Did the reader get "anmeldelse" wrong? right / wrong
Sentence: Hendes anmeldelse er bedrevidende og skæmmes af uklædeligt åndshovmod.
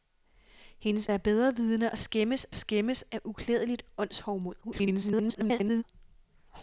wrong